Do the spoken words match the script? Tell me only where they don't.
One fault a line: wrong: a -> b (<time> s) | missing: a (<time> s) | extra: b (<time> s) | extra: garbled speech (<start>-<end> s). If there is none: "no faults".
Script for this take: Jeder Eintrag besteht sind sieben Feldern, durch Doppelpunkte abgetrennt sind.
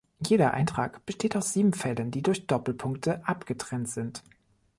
wrong: sind -> aus (1.4 s)
extra: die (2.1 s)